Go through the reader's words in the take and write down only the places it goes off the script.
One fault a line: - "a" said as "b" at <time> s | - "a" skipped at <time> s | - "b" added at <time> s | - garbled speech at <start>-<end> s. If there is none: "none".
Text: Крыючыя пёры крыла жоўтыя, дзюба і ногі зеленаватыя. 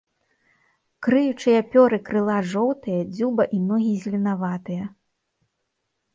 none